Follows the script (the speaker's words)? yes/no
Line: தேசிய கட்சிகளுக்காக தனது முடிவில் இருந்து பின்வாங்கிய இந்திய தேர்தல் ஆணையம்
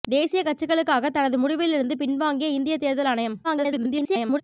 no